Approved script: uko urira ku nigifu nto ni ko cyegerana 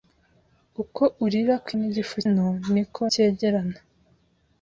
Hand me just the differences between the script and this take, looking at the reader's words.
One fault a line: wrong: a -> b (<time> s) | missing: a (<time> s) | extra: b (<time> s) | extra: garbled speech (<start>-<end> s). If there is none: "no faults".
no faults